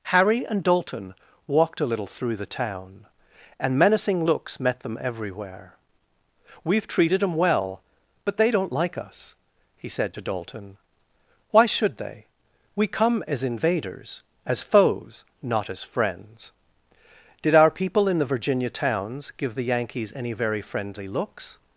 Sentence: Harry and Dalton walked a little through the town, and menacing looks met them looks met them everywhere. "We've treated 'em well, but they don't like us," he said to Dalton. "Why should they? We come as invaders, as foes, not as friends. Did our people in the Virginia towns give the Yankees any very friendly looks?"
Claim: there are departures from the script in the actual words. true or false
true